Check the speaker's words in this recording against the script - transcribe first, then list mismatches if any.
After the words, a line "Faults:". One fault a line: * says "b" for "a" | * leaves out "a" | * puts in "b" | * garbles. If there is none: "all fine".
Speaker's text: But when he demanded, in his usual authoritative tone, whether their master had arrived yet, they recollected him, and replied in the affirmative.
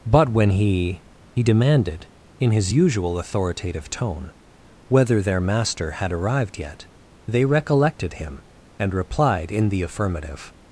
But when he he demanded, in his usual authoritative tone, whether their master had arrived yet, they recollected him, and replied in the affirmative.
Faults:
* puts in "he"